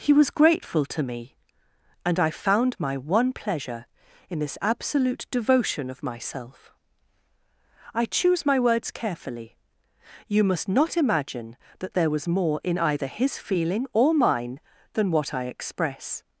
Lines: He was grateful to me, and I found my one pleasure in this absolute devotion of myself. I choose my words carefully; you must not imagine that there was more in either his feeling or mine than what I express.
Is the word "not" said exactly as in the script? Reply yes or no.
yes